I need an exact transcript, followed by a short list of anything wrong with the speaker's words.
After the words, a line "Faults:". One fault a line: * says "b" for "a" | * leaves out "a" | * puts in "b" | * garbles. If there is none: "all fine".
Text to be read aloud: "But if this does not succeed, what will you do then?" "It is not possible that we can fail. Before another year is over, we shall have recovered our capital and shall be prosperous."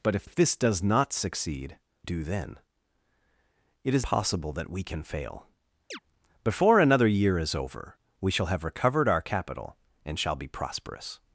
"But if if this does not succeed, do then?" "It is possible that we can fail. Before another year is over, we shall have recovered our capital and shall be prosperous."
Faults:
* puts in "if"
* leaves out "what will you"
* leaves out "not"